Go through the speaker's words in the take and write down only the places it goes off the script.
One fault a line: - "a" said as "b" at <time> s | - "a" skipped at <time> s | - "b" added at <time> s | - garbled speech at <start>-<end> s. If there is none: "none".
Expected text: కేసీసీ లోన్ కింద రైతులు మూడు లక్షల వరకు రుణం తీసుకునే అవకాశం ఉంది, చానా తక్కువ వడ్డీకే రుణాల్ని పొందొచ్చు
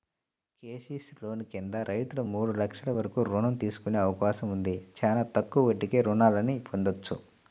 none